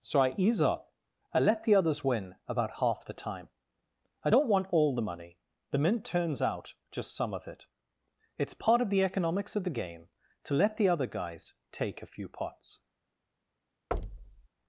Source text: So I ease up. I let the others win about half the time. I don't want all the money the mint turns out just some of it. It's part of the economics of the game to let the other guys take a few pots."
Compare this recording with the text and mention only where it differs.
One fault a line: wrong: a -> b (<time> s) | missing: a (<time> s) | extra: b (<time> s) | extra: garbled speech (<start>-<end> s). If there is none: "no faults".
no faults